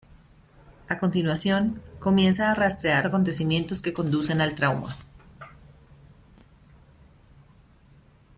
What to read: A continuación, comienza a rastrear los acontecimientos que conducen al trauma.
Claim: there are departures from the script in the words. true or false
true